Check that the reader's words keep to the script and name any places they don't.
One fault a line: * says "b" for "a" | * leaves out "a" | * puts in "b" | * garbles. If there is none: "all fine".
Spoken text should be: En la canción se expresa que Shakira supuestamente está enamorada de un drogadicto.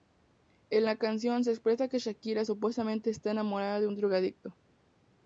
all fine